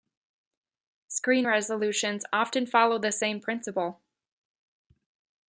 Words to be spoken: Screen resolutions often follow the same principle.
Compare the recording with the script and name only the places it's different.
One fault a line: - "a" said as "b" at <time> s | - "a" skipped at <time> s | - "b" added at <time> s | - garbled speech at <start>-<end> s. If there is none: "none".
none